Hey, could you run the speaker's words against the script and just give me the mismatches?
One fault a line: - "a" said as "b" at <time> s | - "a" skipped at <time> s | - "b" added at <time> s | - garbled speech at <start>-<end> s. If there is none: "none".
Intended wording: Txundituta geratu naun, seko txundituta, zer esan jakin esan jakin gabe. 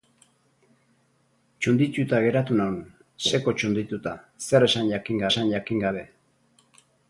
none